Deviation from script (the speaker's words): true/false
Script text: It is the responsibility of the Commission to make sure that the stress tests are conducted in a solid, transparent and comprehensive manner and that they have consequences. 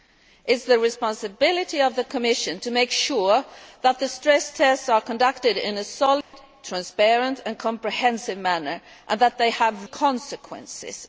false